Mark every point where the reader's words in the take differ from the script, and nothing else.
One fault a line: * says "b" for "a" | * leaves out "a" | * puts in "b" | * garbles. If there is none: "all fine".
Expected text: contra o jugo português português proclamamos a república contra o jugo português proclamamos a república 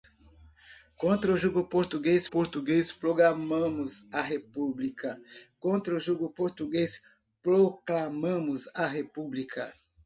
all fine